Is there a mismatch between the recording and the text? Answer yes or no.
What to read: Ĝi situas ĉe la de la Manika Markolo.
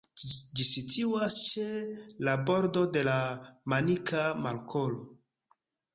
yes